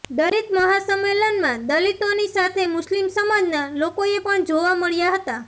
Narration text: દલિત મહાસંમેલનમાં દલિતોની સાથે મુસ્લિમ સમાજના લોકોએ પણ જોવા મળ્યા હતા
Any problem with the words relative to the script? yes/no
no